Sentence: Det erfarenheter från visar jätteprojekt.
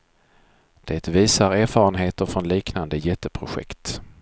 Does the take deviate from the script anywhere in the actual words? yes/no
yes